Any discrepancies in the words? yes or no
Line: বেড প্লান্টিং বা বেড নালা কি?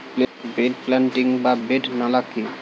no